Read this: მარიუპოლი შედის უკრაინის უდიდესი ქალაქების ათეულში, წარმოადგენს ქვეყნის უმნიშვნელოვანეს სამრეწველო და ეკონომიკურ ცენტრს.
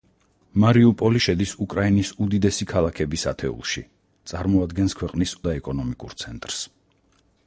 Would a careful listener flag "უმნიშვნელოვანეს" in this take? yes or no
yes